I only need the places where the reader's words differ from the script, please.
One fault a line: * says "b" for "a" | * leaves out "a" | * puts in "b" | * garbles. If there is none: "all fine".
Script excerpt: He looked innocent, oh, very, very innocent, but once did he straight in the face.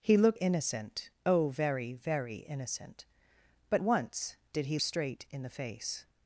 all fine